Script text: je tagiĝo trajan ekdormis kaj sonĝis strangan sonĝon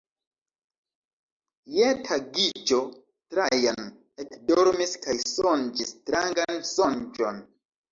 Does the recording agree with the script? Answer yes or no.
yes